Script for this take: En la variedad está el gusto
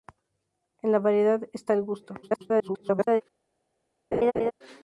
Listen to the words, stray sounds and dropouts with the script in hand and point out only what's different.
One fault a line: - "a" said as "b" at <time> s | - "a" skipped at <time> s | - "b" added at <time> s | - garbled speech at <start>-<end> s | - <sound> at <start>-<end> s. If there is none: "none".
- garbled speech at 2.2-3.2 s
- laugh at 4.1-4.5 s